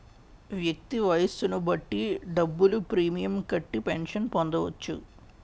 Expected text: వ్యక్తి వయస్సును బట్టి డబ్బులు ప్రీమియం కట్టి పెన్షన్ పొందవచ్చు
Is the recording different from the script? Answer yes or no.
no